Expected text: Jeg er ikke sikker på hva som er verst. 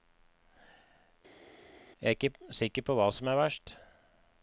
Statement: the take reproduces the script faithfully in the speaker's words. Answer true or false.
true